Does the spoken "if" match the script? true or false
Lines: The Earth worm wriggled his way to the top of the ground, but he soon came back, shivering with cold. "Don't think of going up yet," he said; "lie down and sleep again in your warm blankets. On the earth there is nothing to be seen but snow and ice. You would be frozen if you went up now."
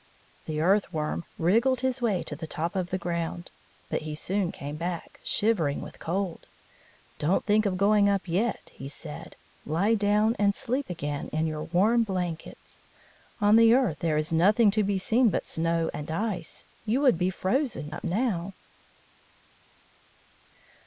false